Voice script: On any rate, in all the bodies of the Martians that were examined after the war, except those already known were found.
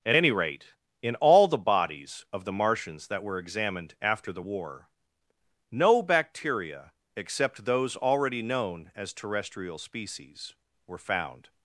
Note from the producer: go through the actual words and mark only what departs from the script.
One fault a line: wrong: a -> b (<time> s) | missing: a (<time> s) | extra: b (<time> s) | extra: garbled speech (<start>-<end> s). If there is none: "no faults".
wrong: On -> At (0.0 s)
extra: no bacteria (5.7 s)
extra: as terrestrial species (8.9 s)